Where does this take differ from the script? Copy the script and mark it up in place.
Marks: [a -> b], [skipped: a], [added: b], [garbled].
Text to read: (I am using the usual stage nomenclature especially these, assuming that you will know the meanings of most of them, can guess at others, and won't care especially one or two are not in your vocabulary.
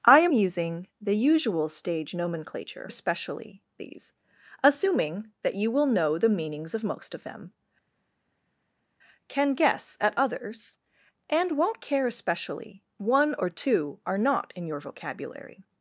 (I am using the usual stage nomenclature especially these, assuming that you will know the meanings of most of them, can guess at others, and won't care especially one or two are not in your vocabulary.